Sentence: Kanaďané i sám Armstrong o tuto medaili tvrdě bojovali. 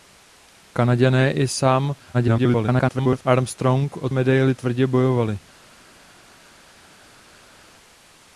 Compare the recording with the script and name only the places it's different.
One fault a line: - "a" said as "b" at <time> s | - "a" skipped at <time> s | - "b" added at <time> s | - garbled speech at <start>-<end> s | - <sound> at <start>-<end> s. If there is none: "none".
- garbled speech at 2.1-3.2 s
- "tuto" skipped at 4.1 s